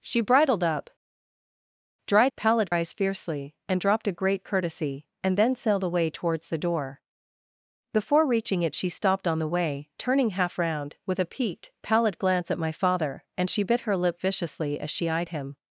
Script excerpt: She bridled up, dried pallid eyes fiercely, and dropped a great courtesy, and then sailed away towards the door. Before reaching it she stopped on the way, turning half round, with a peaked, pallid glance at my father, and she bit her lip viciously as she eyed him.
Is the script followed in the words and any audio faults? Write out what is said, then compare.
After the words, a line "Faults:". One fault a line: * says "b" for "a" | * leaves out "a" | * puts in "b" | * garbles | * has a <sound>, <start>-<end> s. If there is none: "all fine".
She bridled up, dried pallid eyes fiercely, and dropped a great courtesy, and then sailed away towards the door. Before reaching it she stopped on the way, turning half round, with a peaked, pallid glance at my father, and she bit her lip viciously as she eyed him.
Faults:
all fine